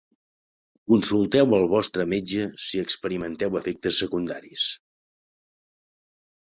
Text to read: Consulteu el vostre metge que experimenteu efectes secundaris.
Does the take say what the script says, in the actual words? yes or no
no